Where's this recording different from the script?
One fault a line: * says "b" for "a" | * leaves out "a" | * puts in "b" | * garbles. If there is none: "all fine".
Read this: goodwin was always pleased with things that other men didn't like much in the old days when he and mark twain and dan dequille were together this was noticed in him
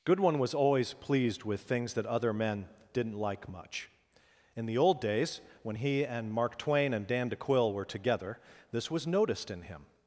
all fine